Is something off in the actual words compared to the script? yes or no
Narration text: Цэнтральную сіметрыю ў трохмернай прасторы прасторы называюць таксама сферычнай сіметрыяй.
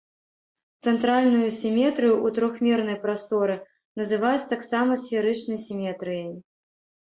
yes